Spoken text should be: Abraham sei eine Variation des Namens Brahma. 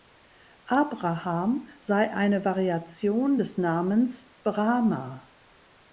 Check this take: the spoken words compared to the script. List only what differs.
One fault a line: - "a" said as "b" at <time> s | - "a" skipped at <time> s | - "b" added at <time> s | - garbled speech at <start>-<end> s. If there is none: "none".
none